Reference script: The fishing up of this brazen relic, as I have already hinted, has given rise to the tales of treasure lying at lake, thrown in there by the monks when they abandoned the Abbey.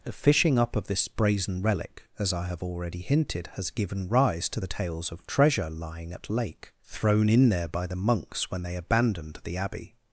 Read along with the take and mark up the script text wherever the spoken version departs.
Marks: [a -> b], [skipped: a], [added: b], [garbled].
The fishing up of this brazen relic, as I have already hinted, has given rise to the tales of treasure lying at lake, thrown in there by the monks when they abandoned the Abbey.